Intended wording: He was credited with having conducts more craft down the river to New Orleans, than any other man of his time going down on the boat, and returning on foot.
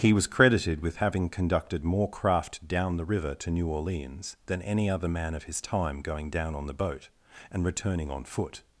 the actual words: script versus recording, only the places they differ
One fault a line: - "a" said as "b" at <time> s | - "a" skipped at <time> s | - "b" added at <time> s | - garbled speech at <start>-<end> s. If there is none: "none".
- "conducts" said as "conducted" at 1.3 s